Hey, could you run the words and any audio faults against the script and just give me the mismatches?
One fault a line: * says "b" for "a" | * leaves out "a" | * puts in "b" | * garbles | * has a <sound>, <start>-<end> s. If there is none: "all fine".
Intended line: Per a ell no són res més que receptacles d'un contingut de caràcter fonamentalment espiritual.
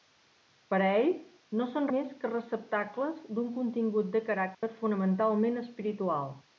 * leaves out "res"
* has a dropout, 4.5-4.6 s